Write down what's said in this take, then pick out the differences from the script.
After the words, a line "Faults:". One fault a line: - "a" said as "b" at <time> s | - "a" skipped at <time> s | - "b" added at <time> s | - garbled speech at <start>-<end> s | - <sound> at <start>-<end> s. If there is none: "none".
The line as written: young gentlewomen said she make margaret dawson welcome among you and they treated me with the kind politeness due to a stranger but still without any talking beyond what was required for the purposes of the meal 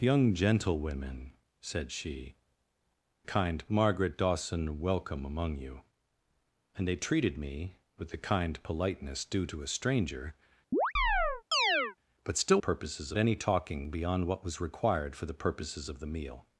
young gentlewomen said she kind margaret dawson welcome among you and they treated me with the kind politeness due to a stranger but still purposes any talking beyond what was required for the purposes of the meal
Faults:
- "make" said as "kind" at 3.2 s
- chirp at 10.7-12.0 s
- "without" said as "purposes" at 12.6 s